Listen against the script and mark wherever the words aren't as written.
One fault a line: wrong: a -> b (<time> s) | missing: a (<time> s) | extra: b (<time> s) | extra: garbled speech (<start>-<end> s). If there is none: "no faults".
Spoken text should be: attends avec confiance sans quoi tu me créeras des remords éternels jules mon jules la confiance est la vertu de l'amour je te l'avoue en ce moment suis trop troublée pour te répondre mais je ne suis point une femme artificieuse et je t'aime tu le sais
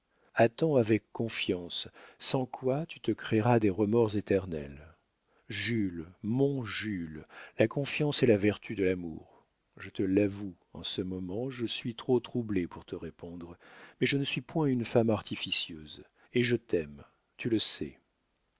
wrong: me -> te (3.0 s)
extra: je (11.5 s)